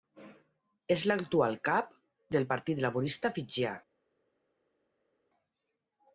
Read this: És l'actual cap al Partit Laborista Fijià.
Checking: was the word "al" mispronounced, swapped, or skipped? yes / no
yes